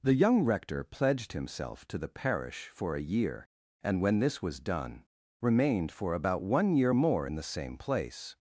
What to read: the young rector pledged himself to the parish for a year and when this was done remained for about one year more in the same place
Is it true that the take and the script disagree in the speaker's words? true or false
false